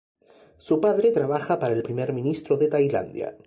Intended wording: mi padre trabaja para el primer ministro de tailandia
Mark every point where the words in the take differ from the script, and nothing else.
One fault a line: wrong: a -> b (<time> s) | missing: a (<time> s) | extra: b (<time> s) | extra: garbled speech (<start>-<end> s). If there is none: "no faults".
wrong: mi -> su (0.6 s)